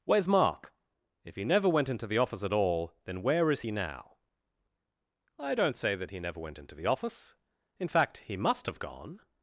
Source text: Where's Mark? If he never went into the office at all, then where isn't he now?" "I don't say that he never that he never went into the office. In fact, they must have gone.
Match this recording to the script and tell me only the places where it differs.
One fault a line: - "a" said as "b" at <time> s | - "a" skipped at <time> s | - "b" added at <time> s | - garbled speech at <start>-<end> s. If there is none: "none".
- "isn't" said as "is" at 3.5 s
- "that he never" skipped at 6.4 s
- "they" said as "he" at 8.2 s